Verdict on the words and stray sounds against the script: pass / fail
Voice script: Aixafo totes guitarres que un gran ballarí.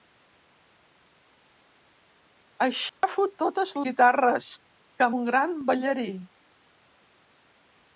fail